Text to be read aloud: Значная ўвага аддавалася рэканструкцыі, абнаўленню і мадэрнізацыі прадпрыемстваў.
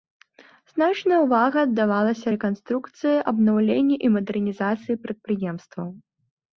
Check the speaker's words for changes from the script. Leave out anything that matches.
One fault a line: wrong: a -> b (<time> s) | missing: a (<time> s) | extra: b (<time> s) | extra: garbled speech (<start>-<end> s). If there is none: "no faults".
no faults